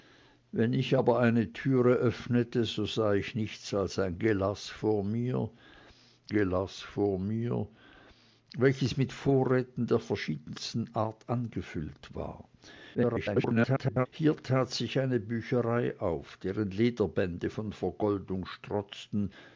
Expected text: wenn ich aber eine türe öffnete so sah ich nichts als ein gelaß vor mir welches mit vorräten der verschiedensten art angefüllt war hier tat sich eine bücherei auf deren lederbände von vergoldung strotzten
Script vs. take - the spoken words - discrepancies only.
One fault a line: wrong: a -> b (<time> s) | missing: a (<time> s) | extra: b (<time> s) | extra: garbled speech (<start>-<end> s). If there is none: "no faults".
extra: gelaß vor mir (6.3 s)
extra: garbled speech (12.9-14.1 s)